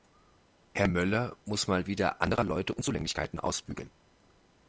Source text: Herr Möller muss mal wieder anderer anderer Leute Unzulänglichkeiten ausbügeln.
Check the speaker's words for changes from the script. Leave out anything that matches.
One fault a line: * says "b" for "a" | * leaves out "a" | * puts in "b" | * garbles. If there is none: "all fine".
* leaves out "anderer"